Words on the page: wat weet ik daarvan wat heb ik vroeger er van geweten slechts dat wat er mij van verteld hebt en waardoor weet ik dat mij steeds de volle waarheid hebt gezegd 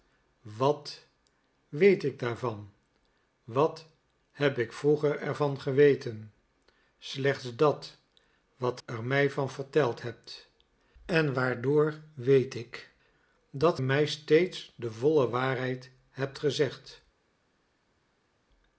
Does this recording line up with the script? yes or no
yes